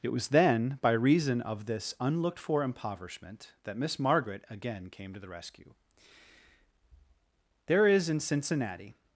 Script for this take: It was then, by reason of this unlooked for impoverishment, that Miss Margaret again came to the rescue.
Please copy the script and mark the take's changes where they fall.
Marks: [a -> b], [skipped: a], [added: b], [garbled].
It was then, by reason of this unlooked for impoverishment, that Miss Margaret again came to the rescue. [added: There is in Cincinnati]